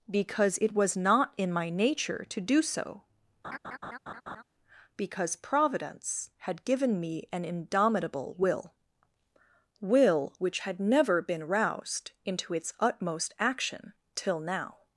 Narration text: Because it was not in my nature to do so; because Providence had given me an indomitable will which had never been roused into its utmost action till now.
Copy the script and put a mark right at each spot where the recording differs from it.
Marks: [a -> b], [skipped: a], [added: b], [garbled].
Because it was not in my nature to do so; because Providence had given me an indomitable will [added: will] which had never been roused into its utmost action till now.